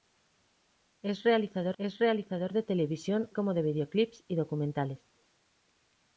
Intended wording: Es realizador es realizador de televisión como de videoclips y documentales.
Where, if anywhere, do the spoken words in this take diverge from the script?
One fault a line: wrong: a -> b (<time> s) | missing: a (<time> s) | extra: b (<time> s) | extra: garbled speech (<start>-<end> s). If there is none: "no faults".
no faults